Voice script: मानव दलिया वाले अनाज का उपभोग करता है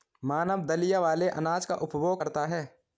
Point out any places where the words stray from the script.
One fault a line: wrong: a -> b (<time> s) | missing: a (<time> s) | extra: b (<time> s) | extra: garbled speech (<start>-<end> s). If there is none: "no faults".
no faults